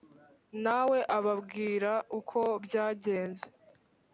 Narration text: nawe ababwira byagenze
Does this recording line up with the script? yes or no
no